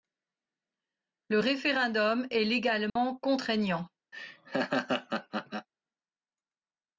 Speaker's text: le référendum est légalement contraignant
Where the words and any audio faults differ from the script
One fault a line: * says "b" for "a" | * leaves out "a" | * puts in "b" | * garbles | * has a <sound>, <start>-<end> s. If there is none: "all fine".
* has a dropout, 2.9-3.0 s
* has a laugh, 4.1-5.7 s